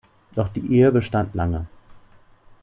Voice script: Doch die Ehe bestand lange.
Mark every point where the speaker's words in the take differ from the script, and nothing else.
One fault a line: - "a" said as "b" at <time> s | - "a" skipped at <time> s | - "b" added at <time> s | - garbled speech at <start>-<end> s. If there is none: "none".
none